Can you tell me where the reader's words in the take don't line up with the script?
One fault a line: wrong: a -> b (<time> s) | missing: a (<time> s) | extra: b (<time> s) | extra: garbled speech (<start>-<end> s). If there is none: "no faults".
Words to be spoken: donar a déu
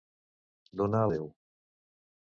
no faults